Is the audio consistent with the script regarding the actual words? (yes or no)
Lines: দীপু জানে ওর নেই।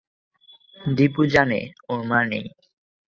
no